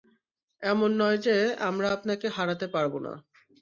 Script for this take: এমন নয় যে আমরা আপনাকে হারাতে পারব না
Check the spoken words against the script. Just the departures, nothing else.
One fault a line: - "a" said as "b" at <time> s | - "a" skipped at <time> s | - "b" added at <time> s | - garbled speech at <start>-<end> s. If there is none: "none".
none